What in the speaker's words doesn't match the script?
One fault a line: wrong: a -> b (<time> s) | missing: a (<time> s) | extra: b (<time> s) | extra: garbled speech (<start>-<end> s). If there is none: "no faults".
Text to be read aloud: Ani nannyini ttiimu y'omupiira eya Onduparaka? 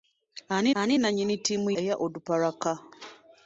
extra: ani (0.8 s)
missing: y'omupiira (1.7 s)